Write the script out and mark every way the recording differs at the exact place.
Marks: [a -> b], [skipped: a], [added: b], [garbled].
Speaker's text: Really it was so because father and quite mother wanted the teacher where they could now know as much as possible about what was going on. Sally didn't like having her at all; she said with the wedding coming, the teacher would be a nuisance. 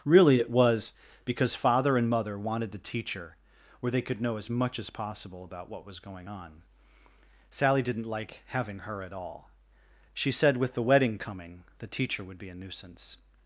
Really it was [skipped: so] because father and [skipped: quite] mother wanted the teacher where they could [skipped: now] know as much as possible about what was going on. Sally didn't like having her at all; she said with the wedding coming, the teacher would be a nuisance.